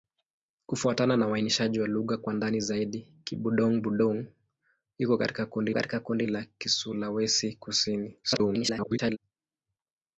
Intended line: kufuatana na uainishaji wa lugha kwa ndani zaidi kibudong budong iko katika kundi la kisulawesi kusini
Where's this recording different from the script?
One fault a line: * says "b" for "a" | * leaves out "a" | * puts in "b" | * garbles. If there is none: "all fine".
* puts in "katika kundi"
* garbles